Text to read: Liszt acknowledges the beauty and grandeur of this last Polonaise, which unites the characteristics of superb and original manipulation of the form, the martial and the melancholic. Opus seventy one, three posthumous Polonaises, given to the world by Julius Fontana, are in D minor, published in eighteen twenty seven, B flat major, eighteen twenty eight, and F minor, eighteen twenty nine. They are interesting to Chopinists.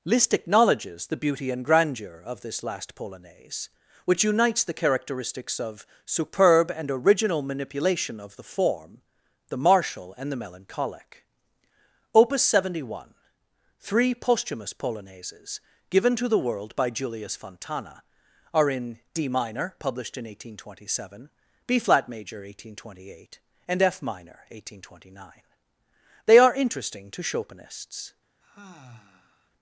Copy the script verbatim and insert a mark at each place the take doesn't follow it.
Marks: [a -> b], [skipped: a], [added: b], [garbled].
Liszt acknowledges the beauty and grandeur of this last Polonaise, which unites the characteristics of superb and original manipulation of the form, the martial and the melancholic. Opus seventy one, three posthumous Polonaises, given to the world by Julius Fontana, are in D minor, published in eighteen twenty seven, B flat major, eighteen twenty eight, and F minor, eighteen twenty nine. They are interesting to Chopinists.